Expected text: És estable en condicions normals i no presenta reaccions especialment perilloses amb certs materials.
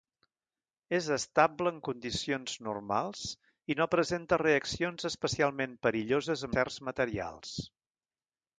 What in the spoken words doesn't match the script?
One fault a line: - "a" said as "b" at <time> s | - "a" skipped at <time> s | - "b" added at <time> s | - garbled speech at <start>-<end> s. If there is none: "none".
- "amb" skipped at 6.5 s